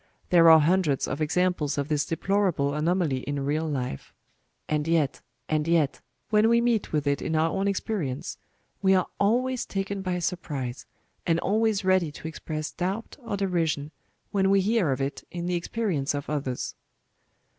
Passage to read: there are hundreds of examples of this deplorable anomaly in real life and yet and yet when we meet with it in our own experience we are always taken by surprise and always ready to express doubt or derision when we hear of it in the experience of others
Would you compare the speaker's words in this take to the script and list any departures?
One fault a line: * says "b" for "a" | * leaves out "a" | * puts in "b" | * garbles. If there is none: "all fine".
all fine